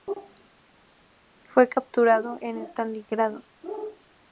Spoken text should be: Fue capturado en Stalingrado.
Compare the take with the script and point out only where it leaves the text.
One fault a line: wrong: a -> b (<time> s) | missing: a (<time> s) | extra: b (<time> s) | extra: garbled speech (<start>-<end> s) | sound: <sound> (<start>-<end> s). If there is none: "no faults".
no faults